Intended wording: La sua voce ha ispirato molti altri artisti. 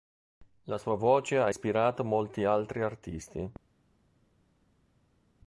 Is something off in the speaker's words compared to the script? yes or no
no